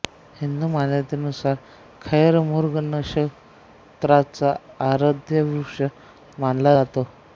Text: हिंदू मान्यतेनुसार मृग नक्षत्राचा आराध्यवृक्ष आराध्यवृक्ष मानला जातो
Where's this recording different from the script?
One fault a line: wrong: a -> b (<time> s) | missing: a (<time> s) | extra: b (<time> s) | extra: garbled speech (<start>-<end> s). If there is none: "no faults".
extra: खैर (2.0 s)
missing: आराध्यवृक्ष (5.8 s)